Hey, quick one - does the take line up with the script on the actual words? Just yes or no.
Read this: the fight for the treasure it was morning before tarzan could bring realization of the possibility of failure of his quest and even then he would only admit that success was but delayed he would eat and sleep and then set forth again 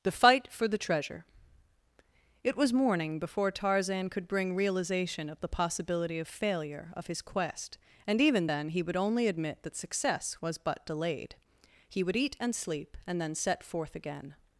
yes